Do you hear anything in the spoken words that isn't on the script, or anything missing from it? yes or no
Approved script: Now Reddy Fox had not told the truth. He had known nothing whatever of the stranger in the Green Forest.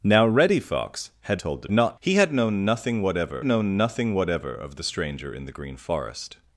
yes